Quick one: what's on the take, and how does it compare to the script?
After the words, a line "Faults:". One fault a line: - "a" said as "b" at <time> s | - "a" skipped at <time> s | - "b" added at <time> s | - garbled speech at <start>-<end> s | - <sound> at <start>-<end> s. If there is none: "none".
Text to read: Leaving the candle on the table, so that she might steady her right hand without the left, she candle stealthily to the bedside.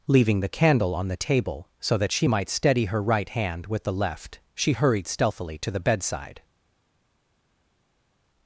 Leaving the candle on the table, so that she might steady her right hand with the left, she hurried stealthily to the bedside.
Faults:
- "without" said as "with" at 3.7 s
- "candle" said as "hurried" at 4.7 s